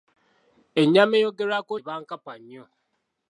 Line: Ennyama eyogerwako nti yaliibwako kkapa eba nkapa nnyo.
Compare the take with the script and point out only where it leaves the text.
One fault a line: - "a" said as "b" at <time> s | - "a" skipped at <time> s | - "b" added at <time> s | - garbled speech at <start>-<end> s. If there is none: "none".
- "nti yaliibwako kkapa" skipped at 1.7 s